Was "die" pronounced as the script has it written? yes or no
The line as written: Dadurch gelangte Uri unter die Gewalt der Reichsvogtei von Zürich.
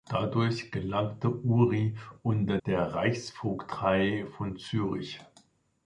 no